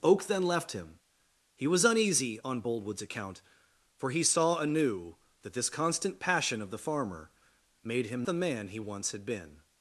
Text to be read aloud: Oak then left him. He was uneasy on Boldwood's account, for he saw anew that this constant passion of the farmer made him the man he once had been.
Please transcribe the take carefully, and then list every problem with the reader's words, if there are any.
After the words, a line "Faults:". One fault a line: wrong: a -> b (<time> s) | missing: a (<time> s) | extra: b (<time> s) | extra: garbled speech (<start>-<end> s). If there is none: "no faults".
Oak then left him. He was uneasy on Boldwood's account, for he saw anew that this constant passion of the farmer made him the man he once had been.
Faults:
no faults